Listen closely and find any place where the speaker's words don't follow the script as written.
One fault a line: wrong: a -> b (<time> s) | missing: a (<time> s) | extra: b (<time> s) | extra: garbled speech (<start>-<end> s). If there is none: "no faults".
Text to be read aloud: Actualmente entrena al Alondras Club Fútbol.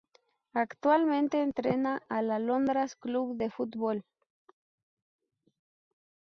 extra: de (3.4 s)